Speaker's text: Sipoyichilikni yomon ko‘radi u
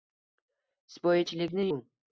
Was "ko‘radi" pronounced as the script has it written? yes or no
no